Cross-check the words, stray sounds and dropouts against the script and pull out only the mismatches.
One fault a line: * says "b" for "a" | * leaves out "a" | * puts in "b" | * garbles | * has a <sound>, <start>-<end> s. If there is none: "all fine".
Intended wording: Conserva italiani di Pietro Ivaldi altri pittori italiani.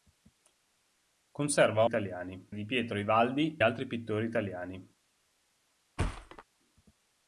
* has a thud, 6.0-6.4 s